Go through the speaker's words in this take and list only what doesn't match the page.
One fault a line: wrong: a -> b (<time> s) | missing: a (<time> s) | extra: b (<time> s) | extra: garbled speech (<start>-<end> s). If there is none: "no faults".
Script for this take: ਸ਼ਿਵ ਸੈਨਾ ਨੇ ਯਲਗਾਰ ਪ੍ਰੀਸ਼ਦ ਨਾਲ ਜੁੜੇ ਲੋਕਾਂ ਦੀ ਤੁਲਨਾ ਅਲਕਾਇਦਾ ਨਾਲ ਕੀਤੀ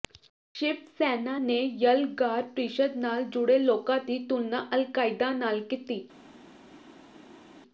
no faults